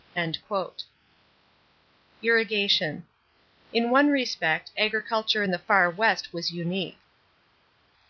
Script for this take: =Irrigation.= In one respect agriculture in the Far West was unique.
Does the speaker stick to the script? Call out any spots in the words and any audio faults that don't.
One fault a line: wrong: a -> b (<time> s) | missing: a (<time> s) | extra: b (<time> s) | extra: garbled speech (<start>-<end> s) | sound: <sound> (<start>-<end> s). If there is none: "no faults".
no faults